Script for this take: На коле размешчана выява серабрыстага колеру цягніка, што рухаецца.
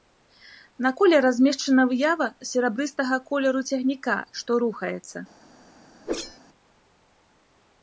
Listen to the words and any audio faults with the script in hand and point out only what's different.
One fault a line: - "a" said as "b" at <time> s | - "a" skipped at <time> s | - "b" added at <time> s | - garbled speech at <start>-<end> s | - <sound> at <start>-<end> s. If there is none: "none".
- whoosh at 6.0-6.4 s